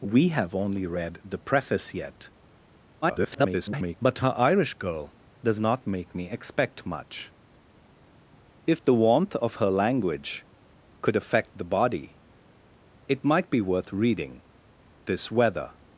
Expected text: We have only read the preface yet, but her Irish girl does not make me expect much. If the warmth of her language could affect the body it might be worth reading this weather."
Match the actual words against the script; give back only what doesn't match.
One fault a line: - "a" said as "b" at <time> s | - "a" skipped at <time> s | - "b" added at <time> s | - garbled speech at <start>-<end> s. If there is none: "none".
- garbled speech at 3.0-4.0 s